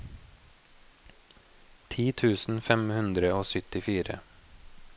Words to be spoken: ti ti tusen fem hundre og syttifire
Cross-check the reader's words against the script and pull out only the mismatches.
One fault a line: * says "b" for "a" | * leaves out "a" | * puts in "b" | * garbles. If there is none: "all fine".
* leaves out "ti"